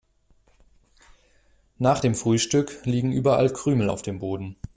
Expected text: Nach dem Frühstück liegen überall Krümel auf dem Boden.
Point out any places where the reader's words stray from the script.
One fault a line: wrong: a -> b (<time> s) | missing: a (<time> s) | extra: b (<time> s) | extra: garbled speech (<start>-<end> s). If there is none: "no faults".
no faults